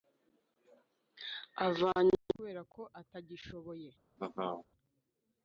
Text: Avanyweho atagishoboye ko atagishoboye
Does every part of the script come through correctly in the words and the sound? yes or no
no